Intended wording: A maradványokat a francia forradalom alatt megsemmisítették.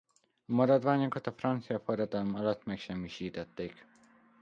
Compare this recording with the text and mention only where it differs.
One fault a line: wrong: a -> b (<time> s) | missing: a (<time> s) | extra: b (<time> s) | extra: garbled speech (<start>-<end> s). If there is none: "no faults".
no faults